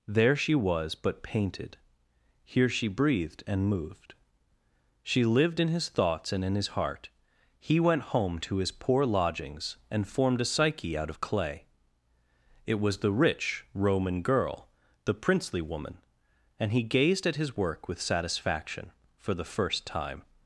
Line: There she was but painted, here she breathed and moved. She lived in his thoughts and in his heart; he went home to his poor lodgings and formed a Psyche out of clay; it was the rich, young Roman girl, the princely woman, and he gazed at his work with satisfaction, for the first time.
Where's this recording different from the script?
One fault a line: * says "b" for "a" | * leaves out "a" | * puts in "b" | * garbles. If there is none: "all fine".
* leaves out "young"